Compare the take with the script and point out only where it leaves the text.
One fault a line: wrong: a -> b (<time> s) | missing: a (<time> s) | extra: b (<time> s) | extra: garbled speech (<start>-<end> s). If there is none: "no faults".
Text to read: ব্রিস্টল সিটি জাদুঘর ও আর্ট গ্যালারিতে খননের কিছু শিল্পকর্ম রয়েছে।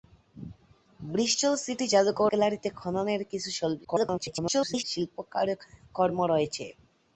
missing: ও আর্ট (2.3 s)
extra: garbled speech (3.8-4.8 s)